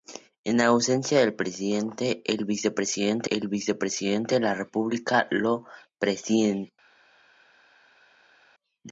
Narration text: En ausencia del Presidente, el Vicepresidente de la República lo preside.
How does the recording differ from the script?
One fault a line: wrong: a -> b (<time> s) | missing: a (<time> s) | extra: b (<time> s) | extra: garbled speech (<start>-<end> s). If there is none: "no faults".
extra: el Vicepresidente (3.3 s)